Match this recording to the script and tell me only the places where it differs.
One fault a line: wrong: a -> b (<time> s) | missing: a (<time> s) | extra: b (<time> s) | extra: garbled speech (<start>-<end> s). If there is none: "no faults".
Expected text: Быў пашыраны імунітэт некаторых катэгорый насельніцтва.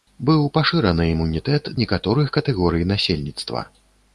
no faults